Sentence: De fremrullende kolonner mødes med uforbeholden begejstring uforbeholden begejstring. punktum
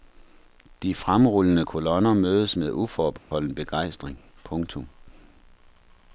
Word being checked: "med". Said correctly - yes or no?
yes